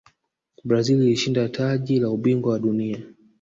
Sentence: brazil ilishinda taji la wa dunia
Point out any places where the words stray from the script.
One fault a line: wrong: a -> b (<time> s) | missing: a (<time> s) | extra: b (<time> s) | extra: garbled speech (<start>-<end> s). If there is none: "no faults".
extra: ubingwa (2.1 s)